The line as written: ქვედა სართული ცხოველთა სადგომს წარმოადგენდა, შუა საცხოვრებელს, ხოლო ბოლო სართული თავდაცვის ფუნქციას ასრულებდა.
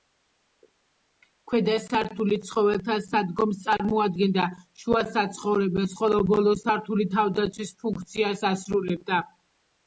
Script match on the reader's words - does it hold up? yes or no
yes